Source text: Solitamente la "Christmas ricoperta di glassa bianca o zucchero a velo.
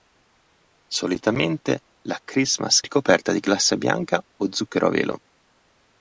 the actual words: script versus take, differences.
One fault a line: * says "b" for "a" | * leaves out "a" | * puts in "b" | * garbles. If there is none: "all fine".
all fine